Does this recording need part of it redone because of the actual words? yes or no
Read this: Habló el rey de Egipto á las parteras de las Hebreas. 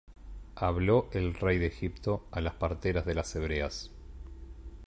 no